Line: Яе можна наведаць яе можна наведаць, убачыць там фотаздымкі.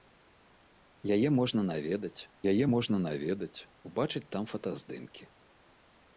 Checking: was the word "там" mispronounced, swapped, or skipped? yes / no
no